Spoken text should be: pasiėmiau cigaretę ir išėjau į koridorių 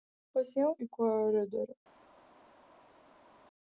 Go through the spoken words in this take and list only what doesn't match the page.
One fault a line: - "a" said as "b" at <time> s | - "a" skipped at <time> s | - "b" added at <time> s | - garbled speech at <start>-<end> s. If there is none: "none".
- "cigaretę ir išėjau" skipped at 0.7 s